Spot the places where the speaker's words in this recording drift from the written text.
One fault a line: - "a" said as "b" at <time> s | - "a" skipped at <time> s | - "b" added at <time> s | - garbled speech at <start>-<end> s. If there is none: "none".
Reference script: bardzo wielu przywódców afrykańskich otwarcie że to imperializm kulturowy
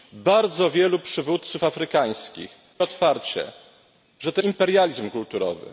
none